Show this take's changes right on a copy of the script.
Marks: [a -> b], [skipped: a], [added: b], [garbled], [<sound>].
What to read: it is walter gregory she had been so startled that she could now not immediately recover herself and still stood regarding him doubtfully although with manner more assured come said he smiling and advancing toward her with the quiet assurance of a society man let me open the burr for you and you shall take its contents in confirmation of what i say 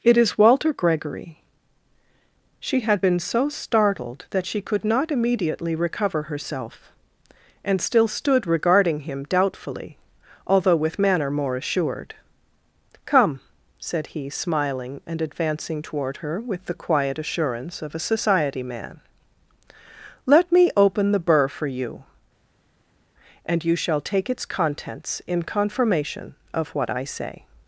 it is walter gregory she had been so startled that she could [skipped: now] not immediately recover herself and still stood regarding him doubtfully although with manner more assured come said he smiling and advancing toward her with the quiet assurance of a society man let me open the burr for you and you shall take its contents in confirmation of what i say